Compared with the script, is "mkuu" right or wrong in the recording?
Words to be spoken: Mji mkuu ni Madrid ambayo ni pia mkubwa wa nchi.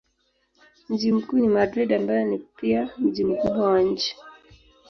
right